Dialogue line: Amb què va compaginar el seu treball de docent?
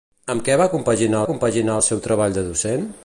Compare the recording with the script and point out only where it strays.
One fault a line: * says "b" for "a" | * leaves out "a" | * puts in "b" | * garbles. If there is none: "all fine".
* puts in "compaginar"